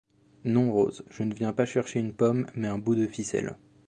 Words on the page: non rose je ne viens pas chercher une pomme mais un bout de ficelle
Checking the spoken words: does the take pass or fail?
pass